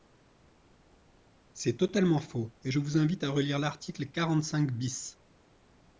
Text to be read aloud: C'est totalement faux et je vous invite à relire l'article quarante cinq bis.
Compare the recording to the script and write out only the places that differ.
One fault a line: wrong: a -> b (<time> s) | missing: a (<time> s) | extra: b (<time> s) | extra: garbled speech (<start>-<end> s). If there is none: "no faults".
no faults